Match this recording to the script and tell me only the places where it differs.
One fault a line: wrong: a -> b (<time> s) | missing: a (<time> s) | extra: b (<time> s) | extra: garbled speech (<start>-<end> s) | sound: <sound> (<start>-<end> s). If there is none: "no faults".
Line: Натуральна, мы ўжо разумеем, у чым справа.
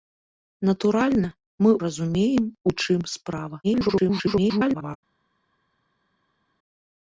missing: ўжо (1.7 s)
extra: garbled speech (3.6-5.0 s)